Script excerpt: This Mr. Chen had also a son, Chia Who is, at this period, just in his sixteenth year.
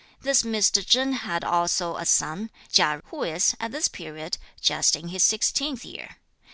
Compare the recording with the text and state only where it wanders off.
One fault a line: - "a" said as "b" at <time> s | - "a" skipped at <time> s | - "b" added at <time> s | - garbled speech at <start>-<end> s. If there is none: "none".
none